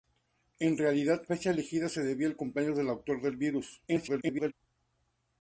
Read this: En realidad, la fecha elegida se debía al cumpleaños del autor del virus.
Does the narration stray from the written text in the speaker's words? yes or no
yes